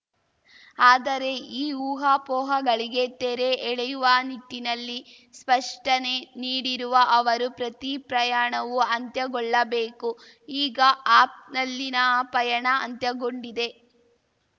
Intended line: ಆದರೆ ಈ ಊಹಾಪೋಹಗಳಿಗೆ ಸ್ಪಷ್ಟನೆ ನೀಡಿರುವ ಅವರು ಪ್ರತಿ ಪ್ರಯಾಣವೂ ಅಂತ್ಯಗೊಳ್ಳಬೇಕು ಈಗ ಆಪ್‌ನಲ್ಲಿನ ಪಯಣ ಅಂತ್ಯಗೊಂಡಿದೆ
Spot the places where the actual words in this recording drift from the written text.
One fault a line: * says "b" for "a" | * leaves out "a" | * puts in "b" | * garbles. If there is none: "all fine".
* puts in "ತೆರೆ ಎಳೆಯುವ ನಿಟ್ಟಿನಲ್ಲಿ"